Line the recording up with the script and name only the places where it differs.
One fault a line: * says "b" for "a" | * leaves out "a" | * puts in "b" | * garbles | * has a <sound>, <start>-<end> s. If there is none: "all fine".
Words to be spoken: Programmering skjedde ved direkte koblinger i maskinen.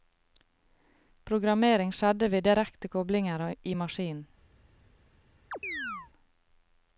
* has a chirp, 5.5-6.1 s